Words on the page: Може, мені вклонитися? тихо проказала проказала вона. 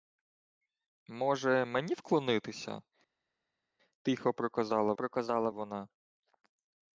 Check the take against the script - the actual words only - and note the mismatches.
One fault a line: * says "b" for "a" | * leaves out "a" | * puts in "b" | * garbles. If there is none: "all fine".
all fine